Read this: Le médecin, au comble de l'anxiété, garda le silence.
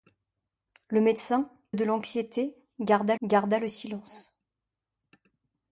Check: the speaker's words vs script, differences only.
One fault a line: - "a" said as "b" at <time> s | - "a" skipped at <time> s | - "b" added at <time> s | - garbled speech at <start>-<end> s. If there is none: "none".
- "au comble" skipped at 1.5 s
- "garda" added at 3.2 s